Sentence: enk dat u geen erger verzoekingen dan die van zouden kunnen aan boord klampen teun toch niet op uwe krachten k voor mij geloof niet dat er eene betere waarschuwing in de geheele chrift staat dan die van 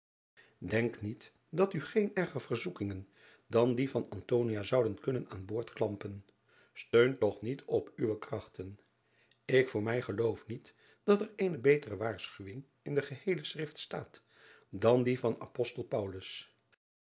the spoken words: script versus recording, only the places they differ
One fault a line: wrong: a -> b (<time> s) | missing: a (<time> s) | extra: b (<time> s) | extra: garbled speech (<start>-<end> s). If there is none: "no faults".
extra: niet (1.0 s)